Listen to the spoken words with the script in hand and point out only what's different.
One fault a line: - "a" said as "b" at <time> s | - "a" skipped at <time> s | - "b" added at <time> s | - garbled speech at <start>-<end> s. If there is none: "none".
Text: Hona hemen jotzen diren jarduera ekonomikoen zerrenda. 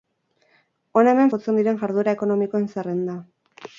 none